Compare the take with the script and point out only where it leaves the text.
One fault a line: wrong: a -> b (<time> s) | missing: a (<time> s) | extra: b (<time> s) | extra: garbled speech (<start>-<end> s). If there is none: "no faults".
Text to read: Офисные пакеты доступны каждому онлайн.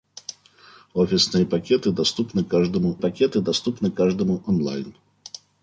extra: пакеты доступны каждому (3.0 s)